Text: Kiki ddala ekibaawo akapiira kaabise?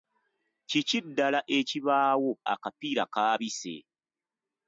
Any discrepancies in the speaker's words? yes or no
no